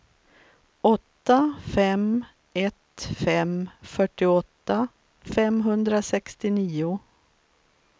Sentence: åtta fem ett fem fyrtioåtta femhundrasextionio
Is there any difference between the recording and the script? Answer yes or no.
no